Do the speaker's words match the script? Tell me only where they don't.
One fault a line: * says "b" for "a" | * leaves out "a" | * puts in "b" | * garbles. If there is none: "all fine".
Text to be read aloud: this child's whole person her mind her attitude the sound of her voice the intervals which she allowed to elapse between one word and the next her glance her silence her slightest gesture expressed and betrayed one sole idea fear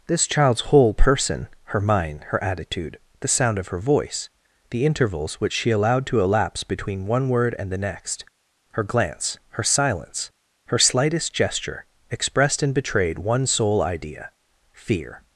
all fine